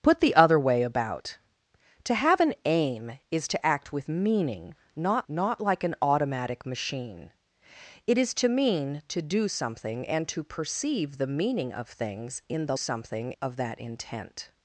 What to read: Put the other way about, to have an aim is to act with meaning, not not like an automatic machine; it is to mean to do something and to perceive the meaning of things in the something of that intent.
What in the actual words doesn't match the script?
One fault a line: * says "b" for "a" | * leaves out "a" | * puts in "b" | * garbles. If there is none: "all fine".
all fine